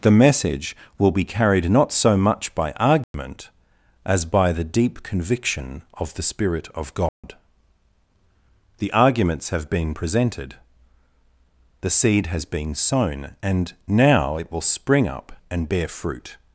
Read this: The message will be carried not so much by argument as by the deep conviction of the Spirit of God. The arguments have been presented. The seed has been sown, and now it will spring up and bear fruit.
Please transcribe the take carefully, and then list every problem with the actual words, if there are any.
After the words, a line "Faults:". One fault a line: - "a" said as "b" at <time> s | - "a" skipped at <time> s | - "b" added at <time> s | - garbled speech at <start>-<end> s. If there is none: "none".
The message will be carried not so much by argument as by the deep conviction of the Spirit of God. The arguments have been presented. The seed has been sown, and now it will spring up and bear fruit.
Faults:
none